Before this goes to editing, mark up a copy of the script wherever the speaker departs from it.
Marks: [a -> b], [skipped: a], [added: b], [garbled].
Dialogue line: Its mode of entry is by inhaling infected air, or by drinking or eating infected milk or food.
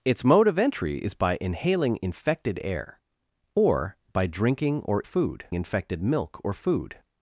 Its mode of entry is by inhaling infected air, or by drinking or [eating -> food] infected milk or food.